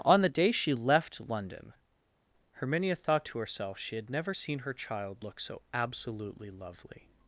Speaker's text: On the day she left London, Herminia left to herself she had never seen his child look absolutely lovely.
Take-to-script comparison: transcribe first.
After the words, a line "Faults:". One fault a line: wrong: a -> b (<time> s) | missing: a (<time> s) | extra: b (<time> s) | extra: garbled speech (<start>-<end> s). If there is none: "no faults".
On the day she left London, Herminia thought to herself she had never seen her child look so absolutely lovely.
Faults:
wrong: left -> thought (3.0 s)
wrong: his -> her (4.6 s)
extra: so (5.4 s)